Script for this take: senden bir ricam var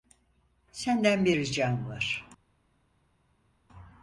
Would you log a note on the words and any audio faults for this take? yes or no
no